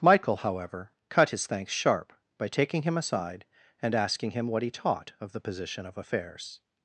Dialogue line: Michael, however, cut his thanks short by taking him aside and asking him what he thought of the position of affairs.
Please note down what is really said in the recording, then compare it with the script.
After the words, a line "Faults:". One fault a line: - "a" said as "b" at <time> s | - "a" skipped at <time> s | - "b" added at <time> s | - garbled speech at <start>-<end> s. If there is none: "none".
Michael, however, cut his thanks sharp by taking him aside and asking him what he taught of the position of affairs.
Faults:
- "short" said as "sharp" at 1.7 s
- "thought" said as "taught" at 4.7 s